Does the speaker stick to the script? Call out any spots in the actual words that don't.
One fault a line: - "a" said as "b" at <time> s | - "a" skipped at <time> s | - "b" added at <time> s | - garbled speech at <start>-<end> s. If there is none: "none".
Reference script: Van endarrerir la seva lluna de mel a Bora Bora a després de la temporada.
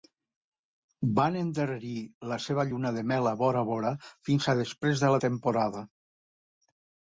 - "fins" added at 4.3 s